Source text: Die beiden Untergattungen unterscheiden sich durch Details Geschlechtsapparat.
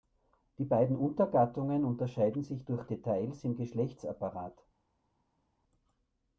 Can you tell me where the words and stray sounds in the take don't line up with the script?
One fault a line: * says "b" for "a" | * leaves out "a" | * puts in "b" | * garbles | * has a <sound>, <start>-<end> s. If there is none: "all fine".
* puts in "im"